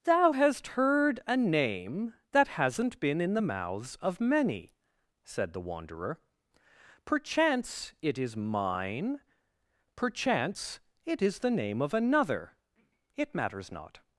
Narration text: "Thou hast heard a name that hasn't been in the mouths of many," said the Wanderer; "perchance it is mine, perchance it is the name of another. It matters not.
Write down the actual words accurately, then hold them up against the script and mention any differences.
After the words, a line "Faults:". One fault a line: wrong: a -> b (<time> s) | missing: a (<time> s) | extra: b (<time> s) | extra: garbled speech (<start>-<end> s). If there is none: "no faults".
"Thou hast heard a name that hasn't been in the mouths of many," said the Wanderer; "perchance it is mine, perchance it is the name of another. It matters not.
Faults:
no faults